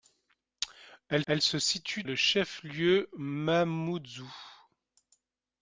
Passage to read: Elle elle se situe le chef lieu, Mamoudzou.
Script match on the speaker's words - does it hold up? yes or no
yes